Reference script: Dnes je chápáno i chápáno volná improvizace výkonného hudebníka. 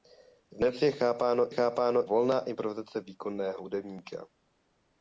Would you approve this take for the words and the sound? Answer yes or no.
yes